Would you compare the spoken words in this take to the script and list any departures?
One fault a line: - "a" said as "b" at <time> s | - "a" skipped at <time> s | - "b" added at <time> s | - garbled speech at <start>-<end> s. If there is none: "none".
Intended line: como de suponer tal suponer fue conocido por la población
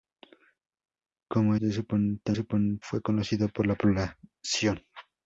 none